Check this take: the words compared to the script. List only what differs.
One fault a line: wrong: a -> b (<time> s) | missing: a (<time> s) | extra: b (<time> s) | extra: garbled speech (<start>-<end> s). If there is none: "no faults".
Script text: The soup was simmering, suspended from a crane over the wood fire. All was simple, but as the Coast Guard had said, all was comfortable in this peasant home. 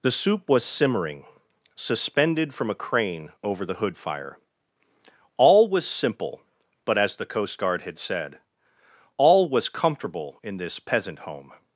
wrong: wood -> hood (3.8 s)